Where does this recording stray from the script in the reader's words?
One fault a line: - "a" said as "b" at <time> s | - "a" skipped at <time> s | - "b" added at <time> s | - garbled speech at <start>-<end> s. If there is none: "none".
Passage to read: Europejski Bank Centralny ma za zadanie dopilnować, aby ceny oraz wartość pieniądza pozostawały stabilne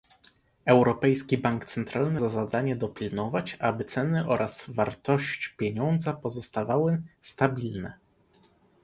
- "ma" skipped at 2.2 s